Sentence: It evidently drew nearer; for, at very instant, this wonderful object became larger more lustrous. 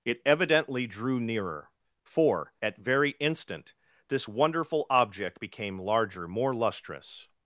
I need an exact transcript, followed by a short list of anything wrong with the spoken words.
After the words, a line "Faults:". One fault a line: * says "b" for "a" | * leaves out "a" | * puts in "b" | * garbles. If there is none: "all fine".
It evidently drew nearer; for, at very instant, this wonderful object became larger more lustrous.
Faults:
all fine